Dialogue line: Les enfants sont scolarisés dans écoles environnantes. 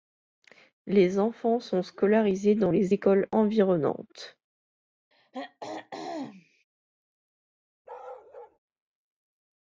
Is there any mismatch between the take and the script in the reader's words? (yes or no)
yes